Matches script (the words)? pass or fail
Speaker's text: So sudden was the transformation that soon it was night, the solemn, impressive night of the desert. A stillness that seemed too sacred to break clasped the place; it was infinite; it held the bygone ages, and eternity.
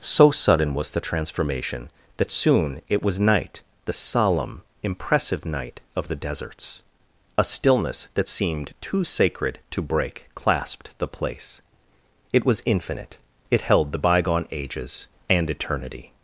fail